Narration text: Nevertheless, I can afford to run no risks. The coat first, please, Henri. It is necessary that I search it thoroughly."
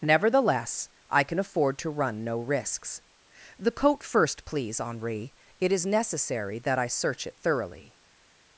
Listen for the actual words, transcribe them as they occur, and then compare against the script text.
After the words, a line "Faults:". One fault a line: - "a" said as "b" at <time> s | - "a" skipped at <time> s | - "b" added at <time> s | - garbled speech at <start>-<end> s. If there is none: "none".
Nevertheless, I can afford to run no risks. The coat first, please, Henri. It is necessary that I search it thoroughly."
Faults:
none